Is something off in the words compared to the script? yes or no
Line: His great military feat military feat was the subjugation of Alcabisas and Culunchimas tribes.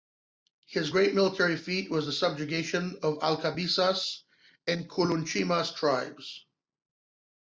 yes